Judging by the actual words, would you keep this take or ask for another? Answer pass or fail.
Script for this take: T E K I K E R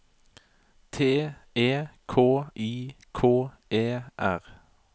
pass